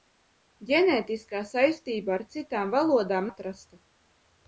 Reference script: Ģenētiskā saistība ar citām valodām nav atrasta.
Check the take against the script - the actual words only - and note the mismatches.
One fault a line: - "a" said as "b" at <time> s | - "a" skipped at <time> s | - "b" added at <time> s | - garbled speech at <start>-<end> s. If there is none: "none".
- "nav" skipped at 3.3 s